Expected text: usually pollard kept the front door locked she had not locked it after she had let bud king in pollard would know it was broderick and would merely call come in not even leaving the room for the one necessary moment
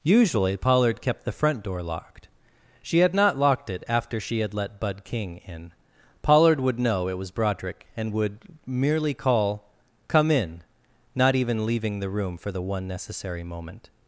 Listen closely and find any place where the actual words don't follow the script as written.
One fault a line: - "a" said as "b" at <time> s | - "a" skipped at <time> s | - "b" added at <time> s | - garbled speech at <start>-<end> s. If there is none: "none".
none